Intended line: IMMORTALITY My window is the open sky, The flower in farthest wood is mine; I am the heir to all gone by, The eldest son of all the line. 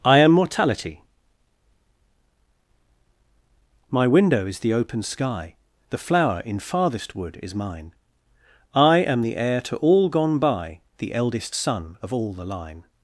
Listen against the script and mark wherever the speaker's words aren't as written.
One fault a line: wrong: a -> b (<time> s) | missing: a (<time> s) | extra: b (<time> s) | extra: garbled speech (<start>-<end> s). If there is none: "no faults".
wrong: IMMORTALITY -> I am mortality (0.0 s)